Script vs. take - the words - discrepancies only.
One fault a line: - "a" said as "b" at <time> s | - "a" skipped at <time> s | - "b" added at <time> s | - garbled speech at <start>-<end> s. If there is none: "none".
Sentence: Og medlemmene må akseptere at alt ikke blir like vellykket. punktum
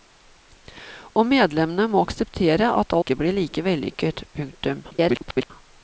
- "alt" skipped at 3.0 s
- garbled speech at 4.9-5.5 s